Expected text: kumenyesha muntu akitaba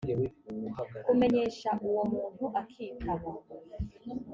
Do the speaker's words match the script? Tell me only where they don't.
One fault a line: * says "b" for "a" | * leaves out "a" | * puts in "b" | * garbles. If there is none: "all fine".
* puts in "uwo"